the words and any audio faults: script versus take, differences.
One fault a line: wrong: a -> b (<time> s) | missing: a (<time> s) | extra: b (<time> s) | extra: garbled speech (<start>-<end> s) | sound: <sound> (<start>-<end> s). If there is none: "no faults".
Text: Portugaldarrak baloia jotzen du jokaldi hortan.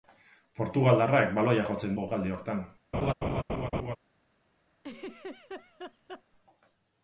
missing: du (2.0 s)
sound: laugh (2.9-4.0 s)
sound: laugh (4.8-6.2 s)